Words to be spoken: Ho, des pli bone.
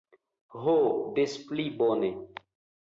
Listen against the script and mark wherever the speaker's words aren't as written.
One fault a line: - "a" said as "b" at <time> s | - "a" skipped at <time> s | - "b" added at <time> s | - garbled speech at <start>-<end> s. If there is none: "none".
none